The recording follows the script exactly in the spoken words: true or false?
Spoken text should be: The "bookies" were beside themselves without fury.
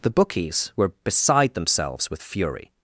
false